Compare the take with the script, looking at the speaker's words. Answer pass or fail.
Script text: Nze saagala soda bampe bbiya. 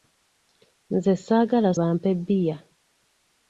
fail